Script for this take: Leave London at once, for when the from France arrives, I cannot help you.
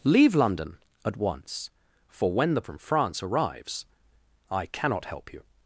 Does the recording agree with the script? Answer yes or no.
yes